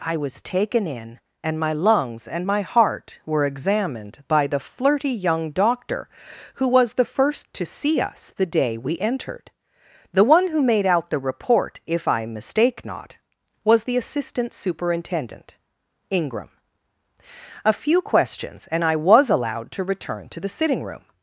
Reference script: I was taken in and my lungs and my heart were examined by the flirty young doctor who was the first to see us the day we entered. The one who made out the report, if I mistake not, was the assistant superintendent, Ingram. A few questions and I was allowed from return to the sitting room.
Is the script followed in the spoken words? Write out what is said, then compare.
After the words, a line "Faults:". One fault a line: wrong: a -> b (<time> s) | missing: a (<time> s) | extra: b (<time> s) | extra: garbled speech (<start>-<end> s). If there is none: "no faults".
I was taken in and my lungs and my heart were examined by the flirty young doctor who was the first to see us the day we entered. The one who made out the report, if I mistake not, was the assistant superintendent, Ingram. A few questions and I was allowed to return to the sitting room.
Faults:
wrong: from -> to (19.7 s)